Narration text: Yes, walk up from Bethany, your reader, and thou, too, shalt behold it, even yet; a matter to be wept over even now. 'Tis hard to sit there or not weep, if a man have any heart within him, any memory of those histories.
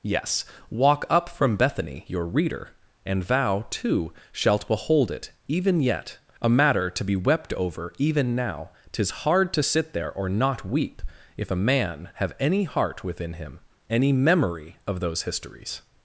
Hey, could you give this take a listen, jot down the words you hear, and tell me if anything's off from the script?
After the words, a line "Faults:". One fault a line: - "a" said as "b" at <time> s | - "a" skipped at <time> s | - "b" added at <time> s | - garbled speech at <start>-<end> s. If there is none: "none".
Yes, walk up from Bethany, your reader, and thou, too, shalt behold it, even yet; a matter to be wept over even now. 'Tis hard to sit there or not weep, if a man have any heart within him, any memory of those histories.
Faults:
none